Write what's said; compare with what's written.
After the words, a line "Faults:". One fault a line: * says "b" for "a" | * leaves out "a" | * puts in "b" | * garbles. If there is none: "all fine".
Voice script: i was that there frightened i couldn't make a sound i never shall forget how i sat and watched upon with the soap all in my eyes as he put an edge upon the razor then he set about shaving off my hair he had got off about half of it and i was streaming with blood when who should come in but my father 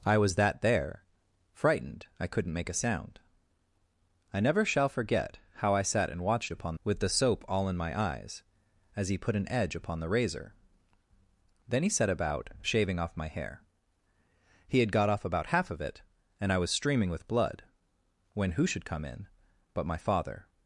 i was that there frightened i couldn't make a sound i never shall forget how i sat and watched upon with the soap all in my eyes as he put an edge upon the razor then he set about shaving off my hair he had got off about half of it and i was streaming with blood when who should come in but my father
Faults:
all fine